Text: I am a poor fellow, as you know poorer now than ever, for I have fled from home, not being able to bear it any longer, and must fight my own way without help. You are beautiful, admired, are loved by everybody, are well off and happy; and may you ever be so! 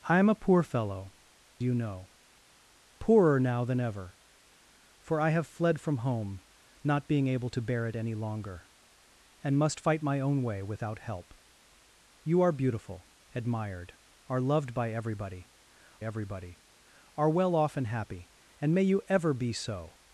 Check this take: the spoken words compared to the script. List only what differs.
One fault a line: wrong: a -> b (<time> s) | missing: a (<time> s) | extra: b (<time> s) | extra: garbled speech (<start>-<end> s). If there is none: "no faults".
missing: as (1.1 s)
extra: everybody (16.0 s)